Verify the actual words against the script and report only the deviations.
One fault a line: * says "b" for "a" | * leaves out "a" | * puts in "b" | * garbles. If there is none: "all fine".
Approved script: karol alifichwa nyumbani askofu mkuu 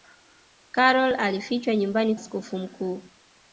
all fine